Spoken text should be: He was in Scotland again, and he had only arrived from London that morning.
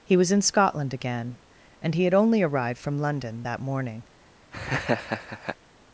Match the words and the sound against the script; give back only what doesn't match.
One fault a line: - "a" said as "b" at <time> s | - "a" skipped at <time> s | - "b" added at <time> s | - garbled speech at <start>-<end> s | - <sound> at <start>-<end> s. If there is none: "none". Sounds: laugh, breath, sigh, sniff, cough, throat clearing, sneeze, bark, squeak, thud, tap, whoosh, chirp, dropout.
- laugh at 4.5-5.6 s